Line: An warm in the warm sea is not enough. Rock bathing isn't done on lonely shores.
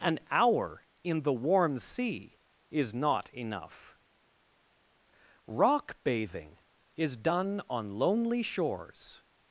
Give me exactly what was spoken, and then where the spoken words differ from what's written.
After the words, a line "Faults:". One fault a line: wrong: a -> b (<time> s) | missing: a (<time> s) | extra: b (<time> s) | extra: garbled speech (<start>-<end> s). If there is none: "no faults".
An hour in the warm sea is not enough. Rock bathing is done on lonely shores.
Faults:
wrong: warm -> hour (0.3 s)
wrong: isn't -> is (7.0 s)